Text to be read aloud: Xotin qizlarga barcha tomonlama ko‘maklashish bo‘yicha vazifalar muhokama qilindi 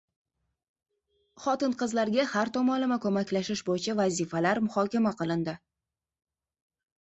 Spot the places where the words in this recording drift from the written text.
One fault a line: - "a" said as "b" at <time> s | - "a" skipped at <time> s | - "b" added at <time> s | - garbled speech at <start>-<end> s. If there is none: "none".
- "barcha" said as "har" at 2.3 s